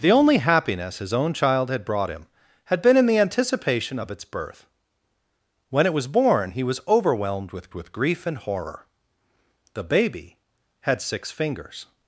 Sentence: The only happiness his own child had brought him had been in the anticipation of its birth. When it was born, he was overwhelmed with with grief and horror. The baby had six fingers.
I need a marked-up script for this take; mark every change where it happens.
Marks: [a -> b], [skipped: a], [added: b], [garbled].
The only happiness his own child had brought him had been in the anticipation of its birth. When it was born, he was overwhelmed with with grief and horror. The baby had six fingers.